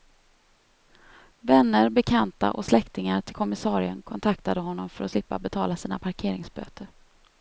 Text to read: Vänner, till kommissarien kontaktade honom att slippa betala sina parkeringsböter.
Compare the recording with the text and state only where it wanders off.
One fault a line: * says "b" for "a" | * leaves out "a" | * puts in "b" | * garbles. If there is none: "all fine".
* puts in "bekanta och släktingar"
* puts in "för"